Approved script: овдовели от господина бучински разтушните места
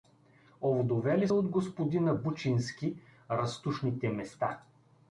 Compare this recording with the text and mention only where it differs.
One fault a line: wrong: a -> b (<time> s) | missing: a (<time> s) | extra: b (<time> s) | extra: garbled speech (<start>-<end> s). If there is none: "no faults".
no faults